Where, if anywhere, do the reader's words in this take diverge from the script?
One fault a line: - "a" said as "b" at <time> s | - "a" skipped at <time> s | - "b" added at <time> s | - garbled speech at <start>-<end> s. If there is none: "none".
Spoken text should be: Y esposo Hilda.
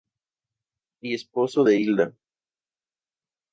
- "de" added at 1.6 s